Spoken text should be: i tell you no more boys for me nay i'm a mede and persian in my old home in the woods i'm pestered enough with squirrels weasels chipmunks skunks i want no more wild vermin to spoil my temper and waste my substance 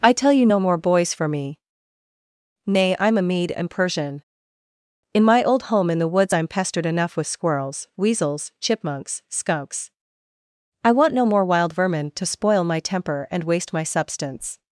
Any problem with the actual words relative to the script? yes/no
no